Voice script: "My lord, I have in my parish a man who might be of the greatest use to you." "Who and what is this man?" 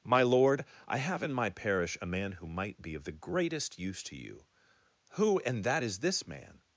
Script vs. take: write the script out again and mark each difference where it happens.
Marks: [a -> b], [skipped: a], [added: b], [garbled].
"My lord, I have in my parish a man who might be of the greatest use to you." "Who and [what -> that] is this man?"